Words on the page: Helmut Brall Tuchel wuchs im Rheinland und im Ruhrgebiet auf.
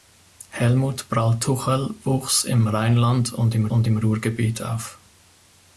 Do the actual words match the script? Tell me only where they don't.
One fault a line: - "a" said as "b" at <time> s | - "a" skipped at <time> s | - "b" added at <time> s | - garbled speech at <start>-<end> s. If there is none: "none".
- "und im" added at 3.7 s